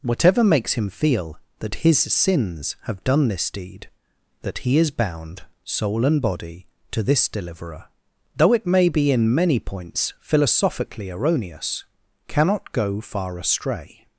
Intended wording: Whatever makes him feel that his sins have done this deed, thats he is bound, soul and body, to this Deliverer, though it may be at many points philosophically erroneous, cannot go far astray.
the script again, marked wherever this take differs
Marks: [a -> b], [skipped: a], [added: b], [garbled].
Whatever makes him feel that his sins have done this deed, [thats -> that] he is bound, soul and body, to this Deliverer, though it may be [at -> in] many points philosophically erroneous, cannot go far astray.